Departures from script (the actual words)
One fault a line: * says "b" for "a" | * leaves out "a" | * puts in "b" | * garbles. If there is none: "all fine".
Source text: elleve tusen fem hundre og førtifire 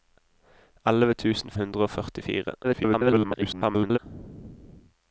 * leaves out "fem"
* garbles